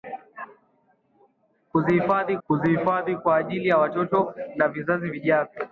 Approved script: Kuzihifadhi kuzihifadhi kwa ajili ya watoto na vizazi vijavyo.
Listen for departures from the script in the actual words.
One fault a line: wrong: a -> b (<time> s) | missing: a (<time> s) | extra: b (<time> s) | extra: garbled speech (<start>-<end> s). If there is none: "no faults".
no faults